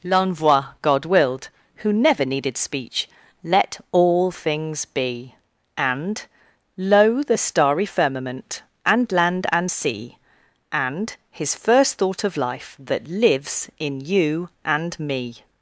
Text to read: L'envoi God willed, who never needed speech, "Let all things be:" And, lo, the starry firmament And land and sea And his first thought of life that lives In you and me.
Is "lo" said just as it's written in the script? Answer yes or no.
yes